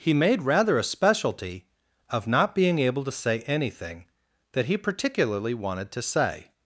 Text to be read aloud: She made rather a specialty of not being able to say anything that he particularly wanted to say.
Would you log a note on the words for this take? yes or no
yes